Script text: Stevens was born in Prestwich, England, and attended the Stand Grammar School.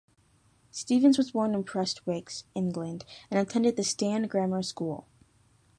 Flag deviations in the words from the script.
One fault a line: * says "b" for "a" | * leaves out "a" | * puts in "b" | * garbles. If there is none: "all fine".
all fine